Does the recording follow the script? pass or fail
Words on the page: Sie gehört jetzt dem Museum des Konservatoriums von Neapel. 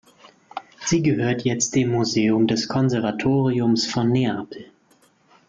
pass